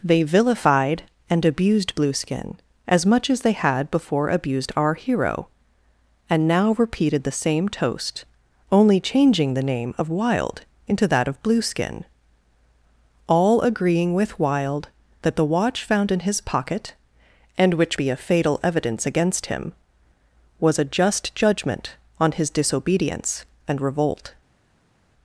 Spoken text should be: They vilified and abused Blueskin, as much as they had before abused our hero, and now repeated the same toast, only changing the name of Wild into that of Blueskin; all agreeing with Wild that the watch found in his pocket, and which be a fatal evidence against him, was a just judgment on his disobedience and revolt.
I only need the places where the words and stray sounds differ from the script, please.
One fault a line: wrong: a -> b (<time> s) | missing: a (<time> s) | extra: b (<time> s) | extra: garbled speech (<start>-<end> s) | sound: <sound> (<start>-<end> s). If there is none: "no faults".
no faults